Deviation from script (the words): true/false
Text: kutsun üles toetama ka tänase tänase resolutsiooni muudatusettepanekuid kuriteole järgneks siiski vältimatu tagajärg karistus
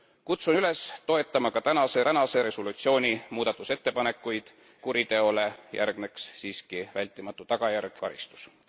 false